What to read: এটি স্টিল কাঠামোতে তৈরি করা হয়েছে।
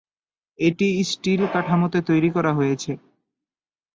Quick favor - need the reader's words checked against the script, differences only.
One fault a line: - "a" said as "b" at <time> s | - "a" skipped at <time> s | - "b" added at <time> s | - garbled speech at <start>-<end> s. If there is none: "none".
none